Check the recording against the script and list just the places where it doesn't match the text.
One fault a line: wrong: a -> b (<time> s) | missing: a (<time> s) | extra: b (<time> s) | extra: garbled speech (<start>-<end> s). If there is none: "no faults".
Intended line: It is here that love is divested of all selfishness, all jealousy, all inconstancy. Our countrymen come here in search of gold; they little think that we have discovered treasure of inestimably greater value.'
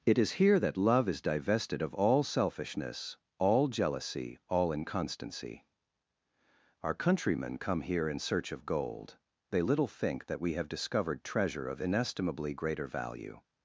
no faults